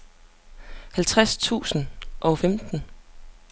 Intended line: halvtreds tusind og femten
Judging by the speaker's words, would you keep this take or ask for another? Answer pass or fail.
pass